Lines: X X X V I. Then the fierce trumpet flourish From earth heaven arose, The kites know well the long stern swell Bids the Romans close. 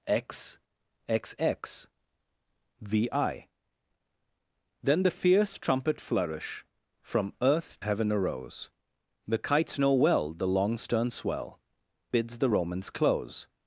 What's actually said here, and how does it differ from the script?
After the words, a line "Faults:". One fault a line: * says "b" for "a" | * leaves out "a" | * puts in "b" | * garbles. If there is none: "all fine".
X X X V I. Then the fierce trumpet flourish From earth heaven arose, The kites know well the long stern swell Bids the Romans close.
Faults:
all fine